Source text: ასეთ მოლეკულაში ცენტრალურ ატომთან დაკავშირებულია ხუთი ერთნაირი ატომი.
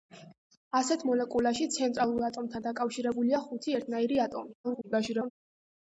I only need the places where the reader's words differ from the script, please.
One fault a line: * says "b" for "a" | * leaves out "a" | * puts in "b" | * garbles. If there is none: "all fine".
* garbles